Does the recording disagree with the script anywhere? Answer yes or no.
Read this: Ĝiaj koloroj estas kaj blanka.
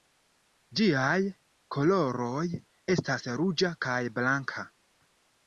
yes